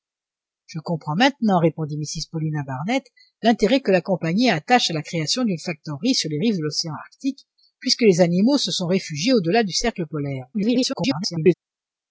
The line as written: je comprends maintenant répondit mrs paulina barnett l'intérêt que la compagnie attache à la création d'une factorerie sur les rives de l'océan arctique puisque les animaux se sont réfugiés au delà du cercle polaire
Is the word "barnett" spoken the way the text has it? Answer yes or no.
yes